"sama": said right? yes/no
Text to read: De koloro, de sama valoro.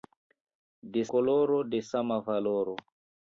yes